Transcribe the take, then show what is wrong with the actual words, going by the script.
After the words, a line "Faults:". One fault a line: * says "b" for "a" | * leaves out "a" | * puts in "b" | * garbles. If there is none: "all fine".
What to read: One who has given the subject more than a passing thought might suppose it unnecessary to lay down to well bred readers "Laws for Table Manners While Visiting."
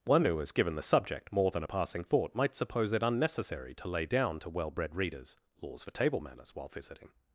One who has given the subject more than a passing thought might suppose it unnecessary to lay down to well bred readers "Laws for Table Manners While Visiting."
Faults:
all fine